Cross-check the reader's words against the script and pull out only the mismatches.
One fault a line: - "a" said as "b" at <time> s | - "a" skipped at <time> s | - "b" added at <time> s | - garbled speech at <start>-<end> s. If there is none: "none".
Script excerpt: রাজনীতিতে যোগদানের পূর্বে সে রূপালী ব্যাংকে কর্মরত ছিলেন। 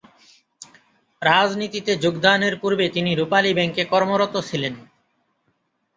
- "সে" said as "তিনি" at 2.9 s